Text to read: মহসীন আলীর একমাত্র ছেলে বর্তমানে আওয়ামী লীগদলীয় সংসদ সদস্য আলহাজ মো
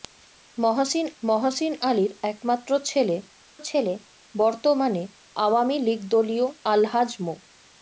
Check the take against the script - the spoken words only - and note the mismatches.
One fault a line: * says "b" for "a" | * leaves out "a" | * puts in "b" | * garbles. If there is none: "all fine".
* puts in "মহসীন"
* puts in "ছেলে"
* leaves out "সংসদ সদস্য"